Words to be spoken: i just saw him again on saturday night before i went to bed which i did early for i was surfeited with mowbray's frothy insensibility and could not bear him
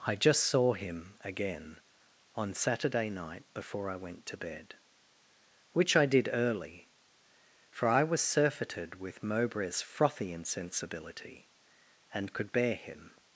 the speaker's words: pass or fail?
fail